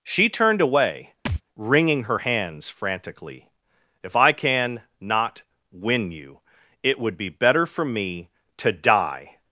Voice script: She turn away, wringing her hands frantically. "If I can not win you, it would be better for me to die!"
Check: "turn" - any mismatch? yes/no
yes